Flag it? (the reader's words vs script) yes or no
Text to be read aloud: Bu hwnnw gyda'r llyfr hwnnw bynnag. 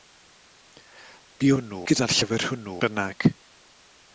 no